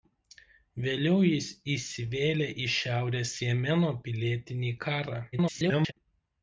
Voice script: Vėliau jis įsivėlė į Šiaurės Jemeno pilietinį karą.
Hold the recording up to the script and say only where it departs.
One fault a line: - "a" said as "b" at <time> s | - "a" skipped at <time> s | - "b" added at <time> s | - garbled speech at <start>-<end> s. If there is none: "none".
- garbled speech at 5.3-5.9 s